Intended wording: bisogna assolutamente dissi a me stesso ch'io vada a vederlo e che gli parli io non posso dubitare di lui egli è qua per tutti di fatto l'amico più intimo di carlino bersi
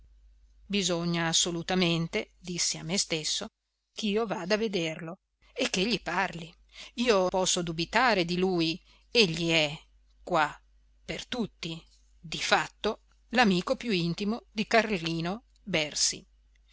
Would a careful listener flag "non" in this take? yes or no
yes